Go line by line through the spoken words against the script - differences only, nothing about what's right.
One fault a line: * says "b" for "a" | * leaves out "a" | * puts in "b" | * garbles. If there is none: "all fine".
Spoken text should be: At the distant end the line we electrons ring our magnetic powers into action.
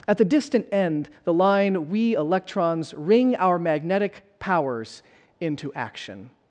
all fine